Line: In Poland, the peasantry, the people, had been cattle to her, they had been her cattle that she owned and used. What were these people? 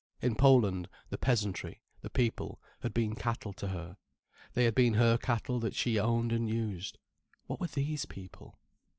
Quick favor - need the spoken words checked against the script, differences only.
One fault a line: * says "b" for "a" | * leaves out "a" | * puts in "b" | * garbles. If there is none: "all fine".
all fine